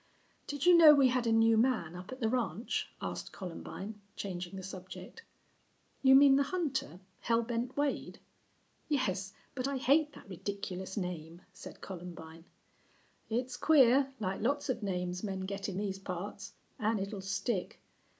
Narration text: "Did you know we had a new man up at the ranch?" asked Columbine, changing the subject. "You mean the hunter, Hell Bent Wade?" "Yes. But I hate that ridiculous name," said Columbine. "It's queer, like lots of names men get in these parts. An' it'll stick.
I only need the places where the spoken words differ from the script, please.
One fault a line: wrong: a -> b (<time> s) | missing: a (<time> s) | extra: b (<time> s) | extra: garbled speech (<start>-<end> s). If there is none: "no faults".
no faults